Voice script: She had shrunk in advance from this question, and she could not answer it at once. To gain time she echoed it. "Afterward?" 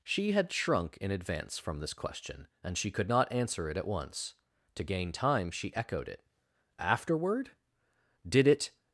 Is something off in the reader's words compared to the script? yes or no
yes